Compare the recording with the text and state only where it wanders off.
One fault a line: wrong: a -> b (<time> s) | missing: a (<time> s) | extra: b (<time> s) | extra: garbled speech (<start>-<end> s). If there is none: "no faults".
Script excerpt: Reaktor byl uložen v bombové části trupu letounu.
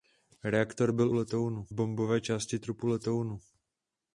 wrong: uložen -> letounu (1.1 s)